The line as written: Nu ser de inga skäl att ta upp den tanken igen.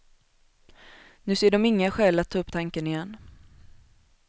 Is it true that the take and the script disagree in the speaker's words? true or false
true